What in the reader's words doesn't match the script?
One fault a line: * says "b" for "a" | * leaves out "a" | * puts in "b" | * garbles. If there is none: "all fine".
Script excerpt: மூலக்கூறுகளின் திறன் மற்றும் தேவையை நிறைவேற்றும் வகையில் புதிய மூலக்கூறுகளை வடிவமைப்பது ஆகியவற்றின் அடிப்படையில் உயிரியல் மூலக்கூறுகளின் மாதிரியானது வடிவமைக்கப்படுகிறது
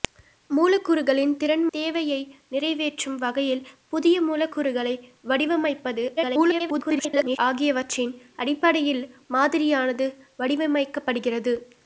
* leaves out "மற்றும்"
* garbles
* leaves out "உயிரியல் மூலக்கூறுகளின்"